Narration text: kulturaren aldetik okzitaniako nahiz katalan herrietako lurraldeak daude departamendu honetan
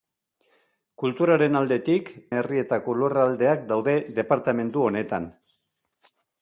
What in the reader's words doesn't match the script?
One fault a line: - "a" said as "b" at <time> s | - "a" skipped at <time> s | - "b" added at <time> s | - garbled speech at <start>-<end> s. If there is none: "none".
- "okzitaniako nahiz katalan" skipped at 2.1 s